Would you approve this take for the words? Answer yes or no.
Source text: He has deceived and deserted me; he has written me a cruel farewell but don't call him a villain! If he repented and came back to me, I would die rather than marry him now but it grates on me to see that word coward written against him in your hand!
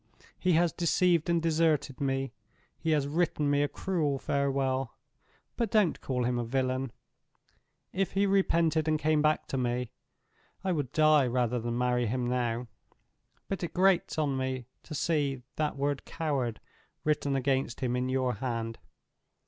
yes